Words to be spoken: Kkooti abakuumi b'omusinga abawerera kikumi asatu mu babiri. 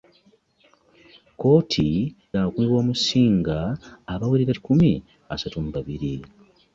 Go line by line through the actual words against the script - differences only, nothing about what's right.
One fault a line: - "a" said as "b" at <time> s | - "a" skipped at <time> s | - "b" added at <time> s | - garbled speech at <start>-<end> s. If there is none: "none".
none